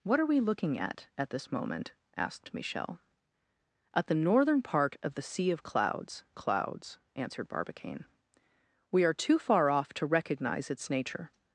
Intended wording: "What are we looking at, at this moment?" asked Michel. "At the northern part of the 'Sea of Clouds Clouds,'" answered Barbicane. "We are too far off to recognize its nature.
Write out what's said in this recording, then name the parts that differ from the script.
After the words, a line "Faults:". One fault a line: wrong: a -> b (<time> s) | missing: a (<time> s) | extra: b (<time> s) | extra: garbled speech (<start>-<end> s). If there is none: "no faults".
"What are we looking at, at this moment?" asked Michel. "At the northern part of the 'Sea of Clouds Clouds,'" answered Barbicane. "We are too far off to recognize its nature.
Faults:
no faults